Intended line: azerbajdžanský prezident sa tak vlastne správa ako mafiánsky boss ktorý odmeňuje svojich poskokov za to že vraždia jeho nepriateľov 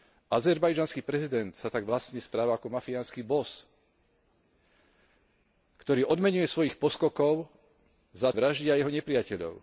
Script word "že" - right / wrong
wrong